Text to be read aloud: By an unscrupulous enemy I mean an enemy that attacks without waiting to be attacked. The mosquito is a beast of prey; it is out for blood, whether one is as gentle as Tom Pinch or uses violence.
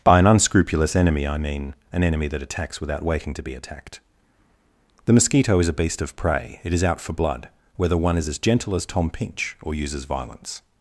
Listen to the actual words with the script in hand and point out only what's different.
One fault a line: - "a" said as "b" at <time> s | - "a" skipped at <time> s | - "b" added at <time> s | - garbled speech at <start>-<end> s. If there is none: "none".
none